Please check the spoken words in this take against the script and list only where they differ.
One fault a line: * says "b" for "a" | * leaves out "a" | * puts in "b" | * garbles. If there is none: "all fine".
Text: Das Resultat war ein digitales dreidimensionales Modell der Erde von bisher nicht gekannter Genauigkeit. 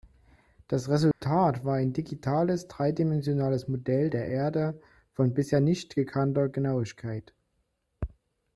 all fine